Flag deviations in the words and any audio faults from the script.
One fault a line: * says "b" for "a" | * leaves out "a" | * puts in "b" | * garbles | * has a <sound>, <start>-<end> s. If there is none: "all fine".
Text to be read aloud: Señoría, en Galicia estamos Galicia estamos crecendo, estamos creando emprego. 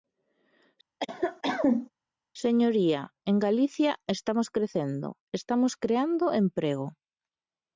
* has a cough, 1.0-1.9 s
* leaves out "Galicia estamos"